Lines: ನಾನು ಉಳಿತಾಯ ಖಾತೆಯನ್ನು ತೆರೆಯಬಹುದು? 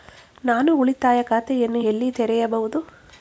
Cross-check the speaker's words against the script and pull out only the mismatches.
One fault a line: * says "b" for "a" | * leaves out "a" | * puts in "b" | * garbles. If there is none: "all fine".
* puts in "ಎಲ್ಲಿ"